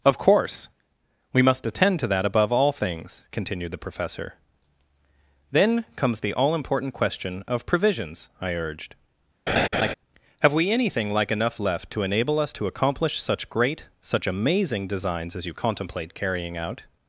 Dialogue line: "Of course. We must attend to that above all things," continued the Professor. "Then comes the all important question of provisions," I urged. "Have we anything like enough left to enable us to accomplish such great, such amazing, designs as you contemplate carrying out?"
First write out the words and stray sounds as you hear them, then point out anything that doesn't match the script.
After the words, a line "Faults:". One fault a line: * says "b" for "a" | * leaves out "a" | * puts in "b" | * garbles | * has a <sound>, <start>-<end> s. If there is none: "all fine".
"Of course. We must attend to that above all things," continued the Professor. "Then comes the all important question of provisions," I urged. "Have we anything like enough left to enable us to accomplish such great, such amazing, designs as you contemplate carrying out?"
Faults:
* has a laugh, 9.5-9.9 s